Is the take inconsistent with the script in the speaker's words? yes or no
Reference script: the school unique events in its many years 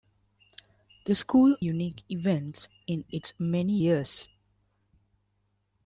no